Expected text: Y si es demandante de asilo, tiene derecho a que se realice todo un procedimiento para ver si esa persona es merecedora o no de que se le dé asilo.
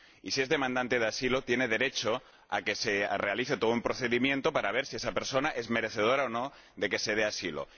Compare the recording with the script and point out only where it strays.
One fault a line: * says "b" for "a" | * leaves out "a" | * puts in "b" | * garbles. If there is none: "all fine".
all fine